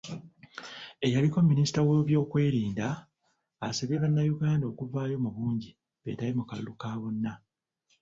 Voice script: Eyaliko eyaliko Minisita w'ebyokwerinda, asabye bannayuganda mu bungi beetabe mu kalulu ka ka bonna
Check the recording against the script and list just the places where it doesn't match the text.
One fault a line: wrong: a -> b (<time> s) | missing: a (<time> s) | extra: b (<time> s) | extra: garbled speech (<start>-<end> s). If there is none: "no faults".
missing: eyaliko (1.4 s)
extra: okuvaayo (4.7 s)
missing: ka (6.9 s)